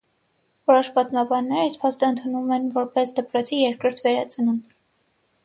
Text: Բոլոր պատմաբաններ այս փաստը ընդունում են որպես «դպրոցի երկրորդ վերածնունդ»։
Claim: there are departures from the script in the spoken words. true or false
true